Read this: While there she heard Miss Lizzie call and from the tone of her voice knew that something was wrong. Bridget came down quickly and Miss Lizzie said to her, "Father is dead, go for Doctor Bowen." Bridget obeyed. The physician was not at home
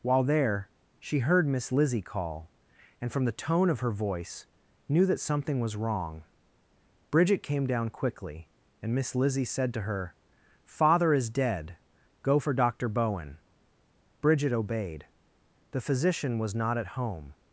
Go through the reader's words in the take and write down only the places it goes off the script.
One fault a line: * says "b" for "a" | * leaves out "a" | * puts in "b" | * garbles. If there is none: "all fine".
all fine